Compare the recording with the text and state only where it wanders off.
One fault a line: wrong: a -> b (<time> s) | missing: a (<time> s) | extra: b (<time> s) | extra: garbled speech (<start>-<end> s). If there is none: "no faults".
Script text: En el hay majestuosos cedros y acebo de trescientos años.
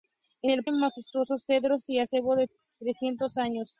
no faults